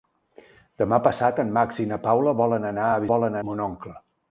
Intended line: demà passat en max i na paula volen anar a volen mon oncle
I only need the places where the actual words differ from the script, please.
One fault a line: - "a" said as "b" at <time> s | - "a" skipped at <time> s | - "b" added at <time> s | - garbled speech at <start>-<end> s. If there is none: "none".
none